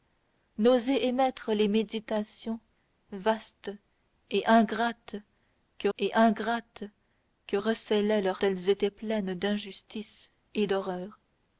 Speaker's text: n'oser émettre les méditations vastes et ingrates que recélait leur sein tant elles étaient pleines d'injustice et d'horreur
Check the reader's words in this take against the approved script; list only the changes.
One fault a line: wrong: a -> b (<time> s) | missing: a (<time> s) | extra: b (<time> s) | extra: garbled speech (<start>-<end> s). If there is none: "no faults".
extra: et ingrates que (6.0 s)
missing: sein tant (8.4 s)